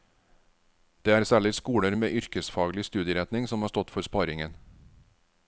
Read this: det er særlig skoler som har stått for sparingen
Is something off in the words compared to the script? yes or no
yes